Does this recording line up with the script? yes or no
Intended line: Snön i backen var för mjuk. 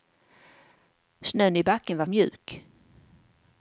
no